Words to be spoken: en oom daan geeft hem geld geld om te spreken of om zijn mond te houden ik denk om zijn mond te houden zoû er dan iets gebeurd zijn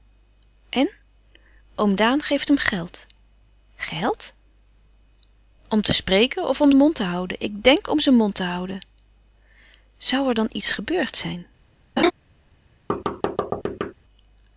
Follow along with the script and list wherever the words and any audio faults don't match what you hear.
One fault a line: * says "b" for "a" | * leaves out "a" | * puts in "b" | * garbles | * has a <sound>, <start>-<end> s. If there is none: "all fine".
* leaves out "zijn"
* has a laugh, 12.0-12.1 s
* has a thud, 12.9-13.9 s